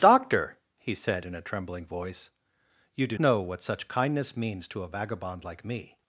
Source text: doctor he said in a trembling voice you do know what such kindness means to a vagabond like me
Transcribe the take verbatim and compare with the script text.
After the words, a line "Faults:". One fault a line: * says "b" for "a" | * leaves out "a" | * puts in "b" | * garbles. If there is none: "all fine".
doctor he said in a trembling voice you do know what such kindness means to a vagabond like me
Faults:
all fine